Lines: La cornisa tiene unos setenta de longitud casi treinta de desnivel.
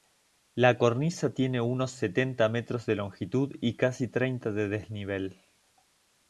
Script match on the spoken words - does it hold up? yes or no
no